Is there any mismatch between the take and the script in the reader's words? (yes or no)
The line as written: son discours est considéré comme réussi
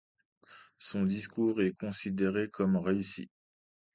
no